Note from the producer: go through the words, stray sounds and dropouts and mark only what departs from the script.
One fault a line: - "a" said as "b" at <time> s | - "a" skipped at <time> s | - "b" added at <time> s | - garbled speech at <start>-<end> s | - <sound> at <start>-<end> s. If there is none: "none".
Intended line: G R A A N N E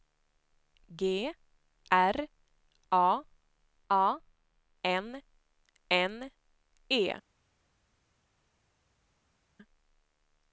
none